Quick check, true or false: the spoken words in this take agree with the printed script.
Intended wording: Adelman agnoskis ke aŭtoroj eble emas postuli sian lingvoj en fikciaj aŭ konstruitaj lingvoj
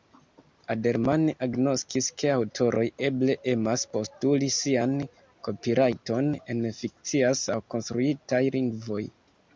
false